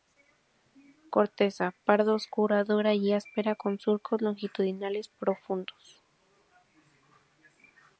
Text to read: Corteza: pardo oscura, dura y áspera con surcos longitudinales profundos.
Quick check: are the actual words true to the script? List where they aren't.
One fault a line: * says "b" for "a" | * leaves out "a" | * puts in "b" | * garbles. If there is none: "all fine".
all fine